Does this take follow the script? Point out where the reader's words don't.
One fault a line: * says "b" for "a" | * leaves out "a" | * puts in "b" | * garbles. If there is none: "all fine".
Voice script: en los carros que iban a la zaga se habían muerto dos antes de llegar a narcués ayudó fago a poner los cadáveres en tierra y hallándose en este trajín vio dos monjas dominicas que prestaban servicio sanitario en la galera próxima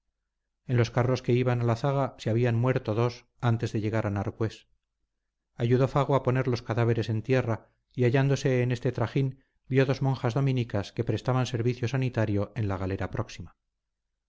all fine